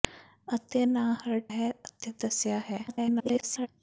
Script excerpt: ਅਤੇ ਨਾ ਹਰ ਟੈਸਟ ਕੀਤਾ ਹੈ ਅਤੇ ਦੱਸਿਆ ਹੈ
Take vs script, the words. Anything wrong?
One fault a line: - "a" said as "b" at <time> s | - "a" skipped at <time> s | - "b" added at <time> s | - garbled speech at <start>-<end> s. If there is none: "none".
- "ਟੈਸਟ ਕੀਤਾ" skipped at 1.4 s
- garbled speech at 2.9-3.7 s